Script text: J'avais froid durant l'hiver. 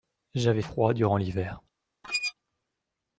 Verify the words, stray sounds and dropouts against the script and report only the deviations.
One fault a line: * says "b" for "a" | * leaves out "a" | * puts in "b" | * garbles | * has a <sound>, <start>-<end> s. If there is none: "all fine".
* has a squeak, 2.0-2.3 s